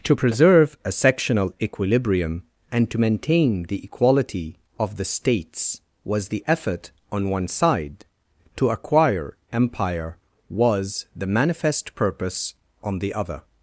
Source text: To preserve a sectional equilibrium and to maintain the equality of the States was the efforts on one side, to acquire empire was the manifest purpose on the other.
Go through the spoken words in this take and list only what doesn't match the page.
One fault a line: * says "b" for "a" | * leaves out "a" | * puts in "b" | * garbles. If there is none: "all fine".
* says "effort" for "efforts"